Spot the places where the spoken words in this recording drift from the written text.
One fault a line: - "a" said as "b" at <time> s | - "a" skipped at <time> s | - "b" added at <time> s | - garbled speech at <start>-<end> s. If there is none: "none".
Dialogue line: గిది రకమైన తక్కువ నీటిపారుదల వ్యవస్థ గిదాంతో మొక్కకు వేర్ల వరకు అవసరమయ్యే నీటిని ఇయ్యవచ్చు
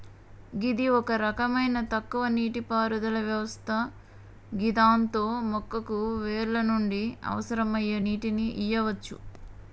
- "ఒక" added at 0.9 s
- "వరకు" said as "నుండి" at 6.7 s